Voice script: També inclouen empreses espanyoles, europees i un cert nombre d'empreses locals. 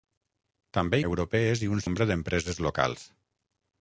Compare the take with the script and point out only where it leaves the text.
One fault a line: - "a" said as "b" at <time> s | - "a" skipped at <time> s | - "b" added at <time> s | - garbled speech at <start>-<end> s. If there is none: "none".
- "inclouen empreses espanyoles" skipped at 1.0 s
- "cert" skipped at 1.8 s